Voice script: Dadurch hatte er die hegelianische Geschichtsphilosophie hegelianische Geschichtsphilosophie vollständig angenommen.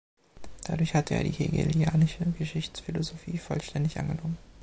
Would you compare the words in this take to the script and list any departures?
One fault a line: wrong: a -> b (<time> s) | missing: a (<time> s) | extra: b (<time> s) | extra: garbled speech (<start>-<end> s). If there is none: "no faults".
missing: hegelianische Geschichtsphilosophie (3.4 s)